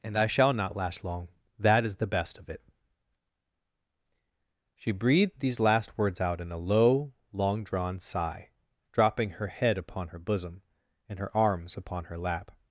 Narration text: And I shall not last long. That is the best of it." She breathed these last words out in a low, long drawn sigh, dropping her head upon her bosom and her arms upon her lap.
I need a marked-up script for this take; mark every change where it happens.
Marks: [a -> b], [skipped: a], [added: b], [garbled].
And I shall not last long. That is the best of it." She breathed these last words out in a low, long drawn sigh, dropping her head upon her bosom and her arms upon her lap.